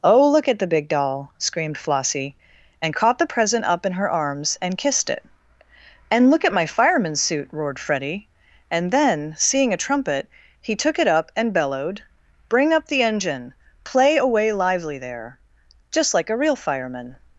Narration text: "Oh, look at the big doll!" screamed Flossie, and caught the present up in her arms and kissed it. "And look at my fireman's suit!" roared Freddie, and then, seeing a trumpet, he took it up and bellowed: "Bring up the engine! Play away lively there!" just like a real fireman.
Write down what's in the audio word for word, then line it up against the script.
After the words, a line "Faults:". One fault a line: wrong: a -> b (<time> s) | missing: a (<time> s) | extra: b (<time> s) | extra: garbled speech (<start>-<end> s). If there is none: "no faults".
"Oh, look at the big doll!" screamed Flossie, and caught the present up in her arms and kissed it. "And look at my fireman's suit!" roared Freddie, and then, seeing a trumpet, he took it up and bellowed: "Bring up the engine! Play away lively there!" just like a real fireman.
Faults:
no faults